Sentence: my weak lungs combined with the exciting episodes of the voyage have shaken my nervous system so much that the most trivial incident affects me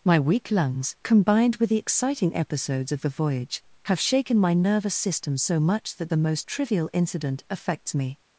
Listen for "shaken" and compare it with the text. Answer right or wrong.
right